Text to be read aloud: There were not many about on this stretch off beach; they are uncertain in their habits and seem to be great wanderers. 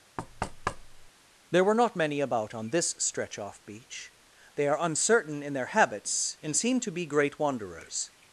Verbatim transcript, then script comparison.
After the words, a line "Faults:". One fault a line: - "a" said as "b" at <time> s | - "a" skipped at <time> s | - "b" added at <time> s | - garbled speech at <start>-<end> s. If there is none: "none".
There were not many about on this stretch off beach; they are uncertain in their habits and seem to be great wanderers.
Faults:
none